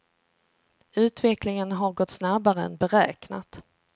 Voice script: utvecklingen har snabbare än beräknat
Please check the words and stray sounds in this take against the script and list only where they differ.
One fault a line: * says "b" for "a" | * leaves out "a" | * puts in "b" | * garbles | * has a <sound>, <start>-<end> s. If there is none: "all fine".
* puts in "gått"